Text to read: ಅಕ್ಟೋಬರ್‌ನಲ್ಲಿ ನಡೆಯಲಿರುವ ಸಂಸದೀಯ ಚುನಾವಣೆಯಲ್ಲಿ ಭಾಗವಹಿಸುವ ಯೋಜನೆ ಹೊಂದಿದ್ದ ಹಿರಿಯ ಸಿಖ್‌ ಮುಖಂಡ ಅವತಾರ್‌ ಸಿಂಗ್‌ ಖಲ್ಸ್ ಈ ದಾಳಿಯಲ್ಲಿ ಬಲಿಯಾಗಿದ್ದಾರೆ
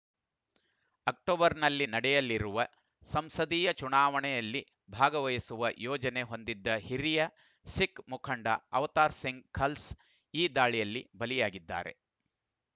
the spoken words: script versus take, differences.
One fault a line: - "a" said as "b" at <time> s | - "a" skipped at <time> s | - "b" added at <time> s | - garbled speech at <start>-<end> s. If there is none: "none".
none